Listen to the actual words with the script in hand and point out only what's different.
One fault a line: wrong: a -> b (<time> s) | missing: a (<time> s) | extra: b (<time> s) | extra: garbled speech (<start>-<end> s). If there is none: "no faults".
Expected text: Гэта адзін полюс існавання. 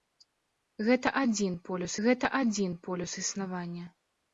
extra: гэта адзін полюс (2.0 s)